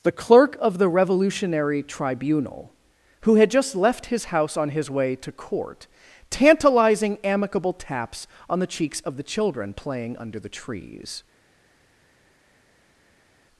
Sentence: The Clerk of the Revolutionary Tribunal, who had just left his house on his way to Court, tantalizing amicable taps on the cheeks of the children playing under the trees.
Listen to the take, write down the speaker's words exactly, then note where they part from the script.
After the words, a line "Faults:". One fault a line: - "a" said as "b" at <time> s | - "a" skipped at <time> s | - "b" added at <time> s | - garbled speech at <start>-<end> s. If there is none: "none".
The Clerk of the Revolutionary Tribunal, who had just left his house on his way to Court, tantalizing amicable taps on the cheeks of the children playing under the trees.
Faults:
none